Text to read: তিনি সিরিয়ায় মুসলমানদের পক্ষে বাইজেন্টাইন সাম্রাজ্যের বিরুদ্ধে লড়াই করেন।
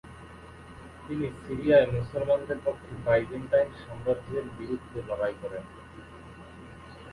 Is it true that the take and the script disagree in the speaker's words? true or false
false